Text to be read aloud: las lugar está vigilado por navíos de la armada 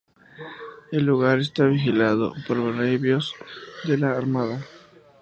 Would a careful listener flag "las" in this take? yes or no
yes